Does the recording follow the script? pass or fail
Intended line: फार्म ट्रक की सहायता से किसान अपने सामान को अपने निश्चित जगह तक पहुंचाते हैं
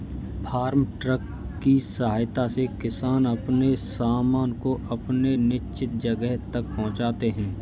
pass